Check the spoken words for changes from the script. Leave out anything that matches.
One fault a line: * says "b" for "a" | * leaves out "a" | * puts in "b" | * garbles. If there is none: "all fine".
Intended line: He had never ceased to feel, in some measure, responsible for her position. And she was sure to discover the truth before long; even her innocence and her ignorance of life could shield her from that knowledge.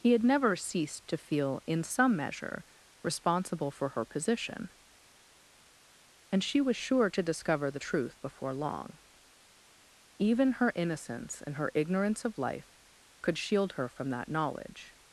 all fine